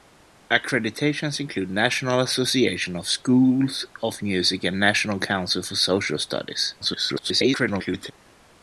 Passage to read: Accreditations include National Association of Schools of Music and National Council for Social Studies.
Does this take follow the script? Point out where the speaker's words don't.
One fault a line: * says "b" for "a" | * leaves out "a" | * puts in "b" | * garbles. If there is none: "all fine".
* garbles